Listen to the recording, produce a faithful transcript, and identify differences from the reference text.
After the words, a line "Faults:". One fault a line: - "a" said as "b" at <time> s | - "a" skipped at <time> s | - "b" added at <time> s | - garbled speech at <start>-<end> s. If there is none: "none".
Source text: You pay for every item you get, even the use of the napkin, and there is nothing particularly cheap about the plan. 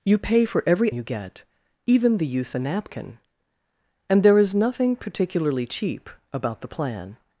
You pay for every you get, even the use the napkin, and there is nothing particularly cheap about the plan.
Faults:
- "item" skipped at 0.9 s
- "of" skipped at 2.5 s